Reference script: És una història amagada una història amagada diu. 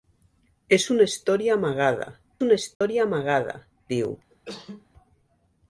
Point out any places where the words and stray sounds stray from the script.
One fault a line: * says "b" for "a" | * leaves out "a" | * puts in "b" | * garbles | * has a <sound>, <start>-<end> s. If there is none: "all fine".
* has a dropout, 2.7-2.8 s
* has a cough, 4.3-4.9 s